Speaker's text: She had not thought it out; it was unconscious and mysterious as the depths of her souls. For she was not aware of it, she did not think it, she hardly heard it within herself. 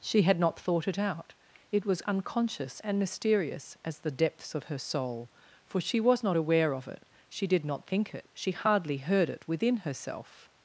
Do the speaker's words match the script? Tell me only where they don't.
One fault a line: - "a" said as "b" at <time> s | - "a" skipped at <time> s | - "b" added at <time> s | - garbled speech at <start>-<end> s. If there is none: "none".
- "souls" said as "soul" at 4.8 s